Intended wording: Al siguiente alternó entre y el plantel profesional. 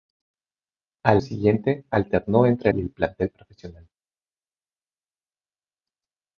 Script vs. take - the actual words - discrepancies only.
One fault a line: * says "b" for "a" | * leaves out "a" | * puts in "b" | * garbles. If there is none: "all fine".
all fine